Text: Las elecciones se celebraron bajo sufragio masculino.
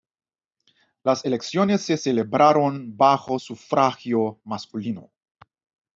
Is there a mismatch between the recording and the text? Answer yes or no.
no